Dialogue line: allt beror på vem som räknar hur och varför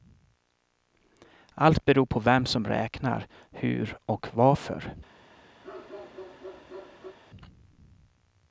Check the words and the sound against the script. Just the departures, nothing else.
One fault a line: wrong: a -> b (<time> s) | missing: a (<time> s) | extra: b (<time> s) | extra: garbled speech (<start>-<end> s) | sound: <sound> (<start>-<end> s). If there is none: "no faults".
sound: bark (5.6-7.2 s)